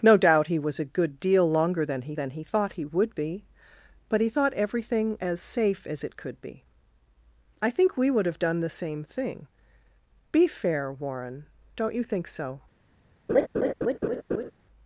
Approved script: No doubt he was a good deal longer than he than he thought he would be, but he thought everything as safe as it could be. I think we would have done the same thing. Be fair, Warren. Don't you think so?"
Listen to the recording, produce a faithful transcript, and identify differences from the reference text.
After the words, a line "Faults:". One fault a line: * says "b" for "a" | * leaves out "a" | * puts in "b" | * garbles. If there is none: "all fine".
No doubt he was a good deal longer than he than he thought he would be, but he thought everything as safe as it could be. I think we would have done the same thing. Be fair, Warren. Don't you think so?"
Faults:
all fine